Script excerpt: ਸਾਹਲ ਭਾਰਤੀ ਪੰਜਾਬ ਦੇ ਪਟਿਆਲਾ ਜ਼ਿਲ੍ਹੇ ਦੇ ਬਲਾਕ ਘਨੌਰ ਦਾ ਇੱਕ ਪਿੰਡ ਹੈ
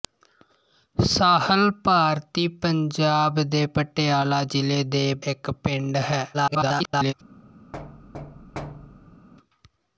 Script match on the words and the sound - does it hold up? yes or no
no